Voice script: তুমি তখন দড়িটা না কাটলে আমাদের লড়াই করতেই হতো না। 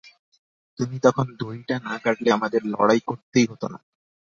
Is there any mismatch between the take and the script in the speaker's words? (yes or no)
no